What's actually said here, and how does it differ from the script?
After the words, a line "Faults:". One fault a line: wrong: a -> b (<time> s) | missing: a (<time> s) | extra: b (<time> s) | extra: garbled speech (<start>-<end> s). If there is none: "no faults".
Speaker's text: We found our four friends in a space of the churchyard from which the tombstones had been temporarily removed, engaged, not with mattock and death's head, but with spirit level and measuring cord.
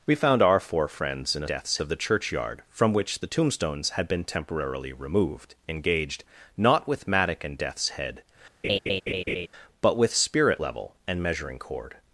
We found our four friends in a death's of the churchyard from which the tombstones had been temporarily removed, engaged, not with mattock and death's head, but with spirit level and measuring cord.
Faults:
wrong: space -> death's (1.5 s)